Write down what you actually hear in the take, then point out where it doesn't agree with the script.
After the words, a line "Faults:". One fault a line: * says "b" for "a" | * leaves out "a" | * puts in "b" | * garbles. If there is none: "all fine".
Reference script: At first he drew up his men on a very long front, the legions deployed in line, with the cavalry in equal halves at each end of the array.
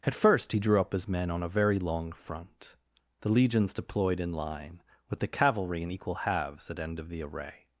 At first he drew up his men on a very long front, the legions deployed in line, with the cavalry in equal halves at end of the array.
Faults:
* leaves out "each"